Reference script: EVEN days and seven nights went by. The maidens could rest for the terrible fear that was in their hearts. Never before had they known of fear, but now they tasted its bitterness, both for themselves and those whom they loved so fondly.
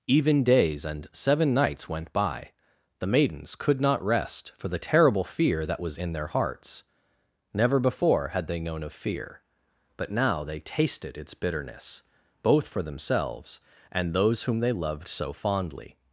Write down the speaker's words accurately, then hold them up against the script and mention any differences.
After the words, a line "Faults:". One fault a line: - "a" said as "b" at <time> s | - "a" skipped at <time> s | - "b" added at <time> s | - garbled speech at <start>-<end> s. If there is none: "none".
EVEN days and seven nights went by. The maidens could not rest for the terrible fear that was in their hearts. Never before had they known of fear, but now they tasted its bitterness, both for themselves and those whom they loved so fondly.
Faults:
- "not" added at 3.8 s